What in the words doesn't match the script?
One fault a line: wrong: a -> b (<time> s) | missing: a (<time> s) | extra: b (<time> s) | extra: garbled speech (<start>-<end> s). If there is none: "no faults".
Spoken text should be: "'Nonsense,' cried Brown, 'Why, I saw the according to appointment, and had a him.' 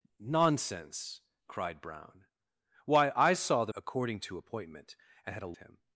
no faults